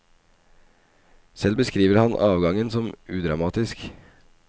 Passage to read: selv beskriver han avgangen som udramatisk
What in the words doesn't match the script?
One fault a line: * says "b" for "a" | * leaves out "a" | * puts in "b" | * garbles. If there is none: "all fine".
all fine